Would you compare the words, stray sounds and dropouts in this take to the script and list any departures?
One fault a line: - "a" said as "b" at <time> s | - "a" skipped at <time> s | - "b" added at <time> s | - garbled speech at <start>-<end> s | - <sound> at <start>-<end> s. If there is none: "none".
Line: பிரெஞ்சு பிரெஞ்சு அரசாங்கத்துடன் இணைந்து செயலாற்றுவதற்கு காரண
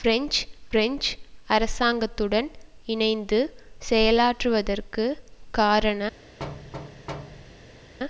- thud at 6.4-7.9 s